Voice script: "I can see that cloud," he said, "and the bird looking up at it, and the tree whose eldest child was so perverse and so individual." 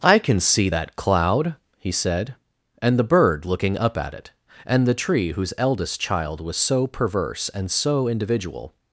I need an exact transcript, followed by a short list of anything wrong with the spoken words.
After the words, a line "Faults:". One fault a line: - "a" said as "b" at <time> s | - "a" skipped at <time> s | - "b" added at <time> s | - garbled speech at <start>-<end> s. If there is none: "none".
"I can see that cloud," he said, "and the bird looking up at it, and the tree whose eldest child was so perverse and so individual."
Faults:
none